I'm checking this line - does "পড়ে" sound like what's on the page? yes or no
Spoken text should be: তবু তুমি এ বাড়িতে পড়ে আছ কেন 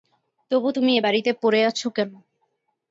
yes